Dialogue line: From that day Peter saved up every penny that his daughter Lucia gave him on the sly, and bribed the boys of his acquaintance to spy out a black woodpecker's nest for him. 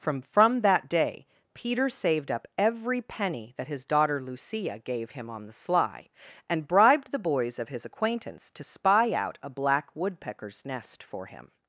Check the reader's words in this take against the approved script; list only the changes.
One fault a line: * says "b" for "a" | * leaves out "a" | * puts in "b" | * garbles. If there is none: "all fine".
* puts in "from"